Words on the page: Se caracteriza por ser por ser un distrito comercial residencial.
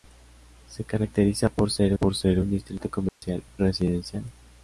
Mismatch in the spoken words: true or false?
false